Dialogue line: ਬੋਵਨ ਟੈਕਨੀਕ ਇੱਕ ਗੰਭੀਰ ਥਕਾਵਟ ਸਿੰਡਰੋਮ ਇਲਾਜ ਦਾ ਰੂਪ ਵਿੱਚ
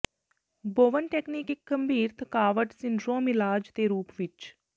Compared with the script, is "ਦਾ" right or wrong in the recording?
wrong